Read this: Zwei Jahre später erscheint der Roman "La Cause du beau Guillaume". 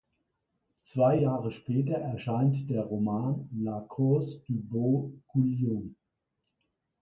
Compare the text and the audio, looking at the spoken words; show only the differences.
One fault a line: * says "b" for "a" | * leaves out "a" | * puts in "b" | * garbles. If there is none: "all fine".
all fine